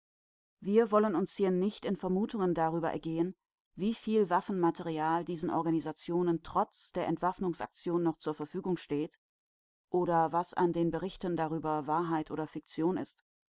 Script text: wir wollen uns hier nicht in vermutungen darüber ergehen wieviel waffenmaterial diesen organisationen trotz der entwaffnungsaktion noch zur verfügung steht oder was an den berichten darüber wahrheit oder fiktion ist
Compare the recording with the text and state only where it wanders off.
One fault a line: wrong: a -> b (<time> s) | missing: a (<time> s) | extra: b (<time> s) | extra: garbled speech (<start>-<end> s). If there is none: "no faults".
no faults